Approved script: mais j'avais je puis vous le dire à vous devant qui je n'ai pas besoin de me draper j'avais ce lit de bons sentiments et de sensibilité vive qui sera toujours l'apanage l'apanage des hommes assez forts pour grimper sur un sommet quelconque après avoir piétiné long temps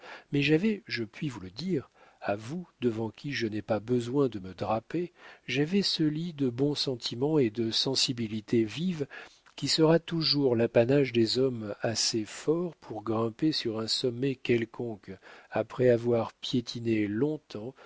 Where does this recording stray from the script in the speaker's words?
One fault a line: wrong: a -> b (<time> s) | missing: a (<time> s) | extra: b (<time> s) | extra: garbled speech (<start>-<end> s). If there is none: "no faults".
missing: l'apanage (11.1 s)